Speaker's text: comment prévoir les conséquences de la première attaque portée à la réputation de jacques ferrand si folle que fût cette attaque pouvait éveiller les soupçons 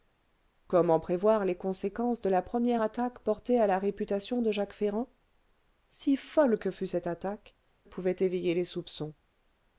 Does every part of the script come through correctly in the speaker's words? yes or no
yes